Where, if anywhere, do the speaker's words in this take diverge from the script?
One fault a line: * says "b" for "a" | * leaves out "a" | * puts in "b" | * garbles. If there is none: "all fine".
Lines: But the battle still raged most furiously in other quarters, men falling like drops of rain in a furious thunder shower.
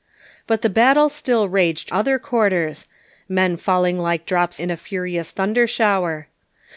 * leaves out "most furiously in"
* leaves out "of rain"